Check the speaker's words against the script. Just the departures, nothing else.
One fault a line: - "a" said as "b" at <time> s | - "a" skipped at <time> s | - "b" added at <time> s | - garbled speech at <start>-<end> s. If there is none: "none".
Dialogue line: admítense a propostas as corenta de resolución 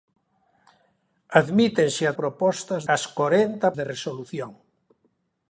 none